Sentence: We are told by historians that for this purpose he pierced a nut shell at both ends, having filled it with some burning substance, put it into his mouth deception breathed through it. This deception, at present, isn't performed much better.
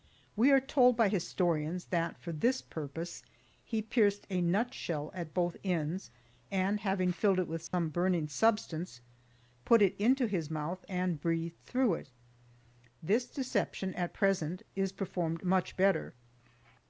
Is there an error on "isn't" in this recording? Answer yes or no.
yes